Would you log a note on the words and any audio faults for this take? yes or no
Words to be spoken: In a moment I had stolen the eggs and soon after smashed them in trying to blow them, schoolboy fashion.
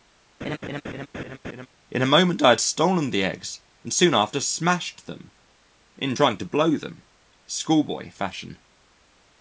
yes